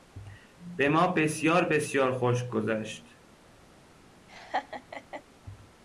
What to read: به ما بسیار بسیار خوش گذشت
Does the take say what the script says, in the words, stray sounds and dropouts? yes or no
no